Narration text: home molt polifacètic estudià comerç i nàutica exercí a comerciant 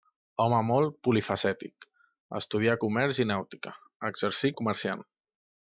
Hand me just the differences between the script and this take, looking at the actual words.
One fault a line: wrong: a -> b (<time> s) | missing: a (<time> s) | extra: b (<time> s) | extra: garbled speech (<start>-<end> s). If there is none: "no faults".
no faults